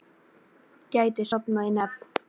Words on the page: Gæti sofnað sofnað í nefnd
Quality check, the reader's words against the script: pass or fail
fail